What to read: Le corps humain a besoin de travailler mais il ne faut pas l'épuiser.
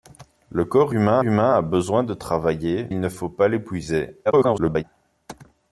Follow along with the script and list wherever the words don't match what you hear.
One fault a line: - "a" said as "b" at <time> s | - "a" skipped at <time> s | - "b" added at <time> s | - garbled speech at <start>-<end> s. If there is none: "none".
- "humain" added at 1.2 s
- "mais" skipped at 2.9 s
- garbled speech at 4.2-4.8 s